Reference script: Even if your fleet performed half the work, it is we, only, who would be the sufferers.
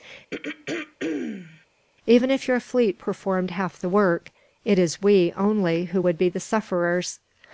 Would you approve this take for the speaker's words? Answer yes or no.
yes